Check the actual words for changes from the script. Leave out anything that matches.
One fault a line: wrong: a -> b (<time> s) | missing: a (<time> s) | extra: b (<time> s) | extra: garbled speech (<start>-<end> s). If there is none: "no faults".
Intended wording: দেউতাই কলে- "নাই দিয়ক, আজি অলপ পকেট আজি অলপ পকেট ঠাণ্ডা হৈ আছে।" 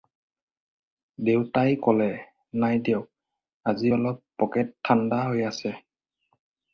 missing: আজি অলপ পকেট (4.7 s)